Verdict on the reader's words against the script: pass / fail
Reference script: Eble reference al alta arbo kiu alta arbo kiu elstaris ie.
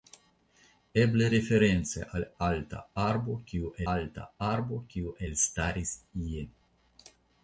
pass